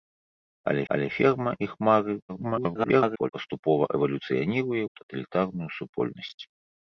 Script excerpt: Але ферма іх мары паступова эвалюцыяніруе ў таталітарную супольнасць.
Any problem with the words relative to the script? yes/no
yes